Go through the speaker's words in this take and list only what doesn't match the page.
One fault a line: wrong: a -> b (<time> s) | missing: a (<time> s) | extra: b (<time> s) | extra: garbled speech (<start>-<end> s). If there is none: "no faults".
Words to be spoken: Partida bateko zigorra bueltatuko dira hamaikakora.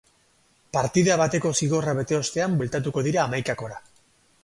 extra: bete ostean (2.0 s)